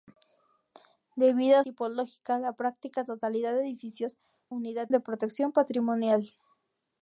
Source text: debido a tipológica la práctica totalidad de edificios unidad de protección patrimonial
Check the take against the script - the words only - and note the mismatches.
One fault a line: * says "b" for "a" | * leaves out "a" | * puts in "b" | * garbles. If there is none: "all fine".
all fine